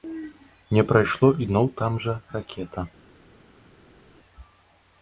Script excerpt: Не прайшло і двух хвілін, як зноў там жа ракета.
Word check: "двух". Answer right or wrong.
wrong